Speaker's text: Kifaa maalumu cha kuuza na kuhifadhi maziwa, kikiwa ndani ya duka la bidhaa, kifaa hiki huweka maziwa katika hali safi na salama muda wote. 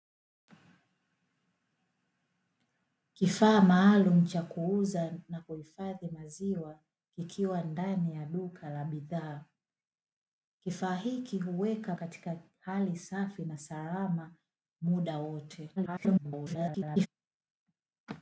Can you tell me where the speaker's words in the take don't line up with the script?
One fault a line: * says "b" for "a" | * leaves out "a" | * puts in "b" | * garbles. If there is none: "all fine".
* leaves out "maziwa"
* garbles